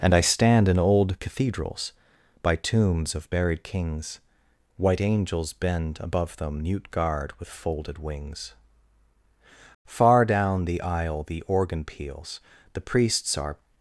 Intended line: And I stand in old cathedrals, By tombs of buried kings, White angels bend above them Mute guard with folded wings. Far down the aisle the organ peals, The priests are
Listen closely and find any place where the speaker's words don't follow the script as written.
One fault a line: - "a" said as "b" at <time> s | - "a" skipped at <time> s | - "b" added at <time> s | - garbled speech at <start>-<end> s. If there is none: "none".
none